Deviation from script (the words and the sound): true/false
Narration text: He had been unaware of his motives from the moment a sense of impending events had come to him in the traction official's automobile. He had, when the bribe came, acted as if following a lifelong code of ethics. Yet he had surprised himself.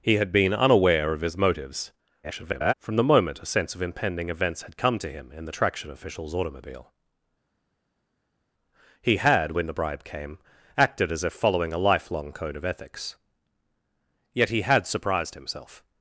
true